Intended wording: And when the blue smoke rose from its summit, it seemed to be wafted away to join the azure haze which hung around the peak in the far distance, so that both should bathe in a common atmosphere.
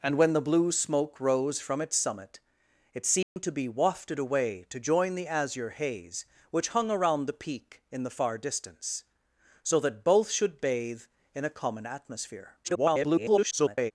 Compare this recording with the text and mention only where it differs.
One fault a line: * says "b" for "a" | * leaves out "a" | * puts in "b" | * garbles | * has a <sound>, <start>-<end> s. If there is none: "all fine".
* has a dropout, 3.2-3.4 s
* garbles